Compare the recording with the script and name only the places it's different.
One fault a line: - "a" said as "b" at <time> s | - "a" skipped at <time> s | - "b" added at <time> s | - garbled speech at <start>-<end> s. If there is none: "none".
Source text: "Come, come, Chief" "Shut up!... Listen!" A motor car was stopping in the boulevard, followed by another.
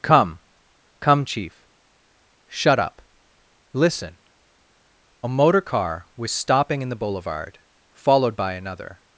none